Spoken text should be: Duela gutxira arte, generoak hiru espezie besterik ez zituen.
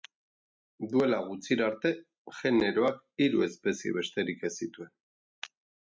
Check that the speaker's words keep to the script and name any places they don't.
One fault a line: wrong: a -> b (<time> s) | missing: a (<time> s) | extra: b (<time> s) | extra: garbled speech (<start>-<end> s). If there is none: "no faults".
no faults